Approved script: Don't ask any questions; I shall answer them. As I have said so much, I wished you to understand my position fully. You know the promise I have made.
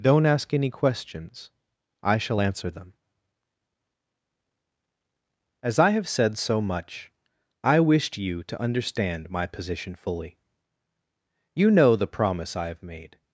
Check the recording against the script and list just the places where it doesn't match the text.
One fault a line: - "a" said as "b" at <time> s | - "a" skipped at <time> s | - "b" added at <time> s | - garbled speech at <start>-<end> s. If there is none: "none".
none